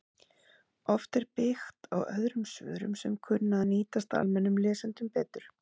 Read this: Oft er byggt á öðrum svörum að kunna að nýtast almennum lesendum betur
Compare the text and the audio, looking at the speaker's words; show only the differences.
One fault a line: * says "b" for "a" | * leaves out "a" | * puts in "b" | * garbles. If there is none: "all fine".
* says "sem" for "að"